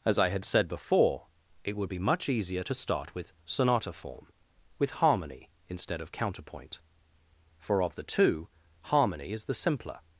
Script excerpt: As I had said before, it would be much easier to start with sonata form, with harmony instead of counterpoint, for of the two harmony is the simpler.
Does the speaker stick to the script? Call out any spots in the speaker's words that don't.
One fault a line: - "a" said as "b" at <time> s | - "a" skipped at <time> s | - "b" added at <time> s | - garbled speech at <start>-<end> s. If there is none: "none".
none